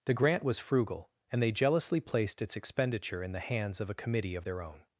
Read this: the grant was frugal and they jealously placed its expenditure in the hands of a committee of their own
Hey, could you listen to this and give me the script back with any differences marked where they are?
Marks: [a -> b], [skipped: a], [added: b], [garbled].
the grant was frugal and they jealously placed its expenditure in the hands of a committee of their own